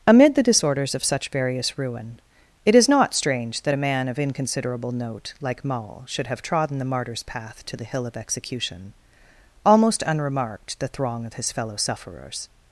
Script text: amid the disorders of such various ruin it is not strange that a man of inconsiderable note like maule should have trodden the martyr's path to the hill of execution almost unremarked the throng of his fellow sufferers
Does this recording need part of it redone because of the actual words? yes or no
no